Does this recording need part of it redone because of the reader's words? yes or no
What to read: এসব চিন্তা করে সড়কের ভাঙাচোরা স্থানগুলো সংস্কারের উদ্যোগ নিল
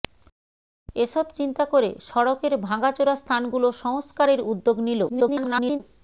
yes